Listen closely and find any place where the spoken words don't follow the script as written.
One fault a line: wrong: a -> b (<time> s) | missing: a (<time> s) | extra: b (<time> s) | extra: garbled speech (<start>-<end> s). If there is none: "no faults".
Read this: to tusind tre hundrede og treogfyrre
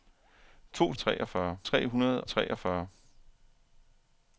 wrong: tusind -> treogfyrre (1.0 s)
missing: og (2.2 s)